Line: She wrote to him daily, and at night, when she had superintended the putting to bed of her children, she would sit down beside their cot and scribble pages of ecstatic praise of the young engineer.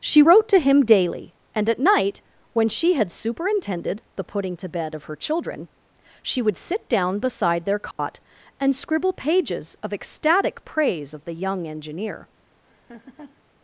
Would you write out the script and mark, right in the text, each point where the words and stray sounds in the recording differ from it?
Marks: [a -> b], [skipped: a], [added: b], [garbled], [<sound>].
She wrote to him daily, and at night, when she had superintended the putting to bed of her children, she would sit down beside their cot [dropout] and scribble pages of ecstatic praise of the young engineer. [laugh]